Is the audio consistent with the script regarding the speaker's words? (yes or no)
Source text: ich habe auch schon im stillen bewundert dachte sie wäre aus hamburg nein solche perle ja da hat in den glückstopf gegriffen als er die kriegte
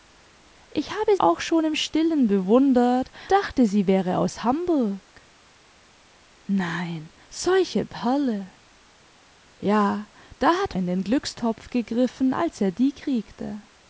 yes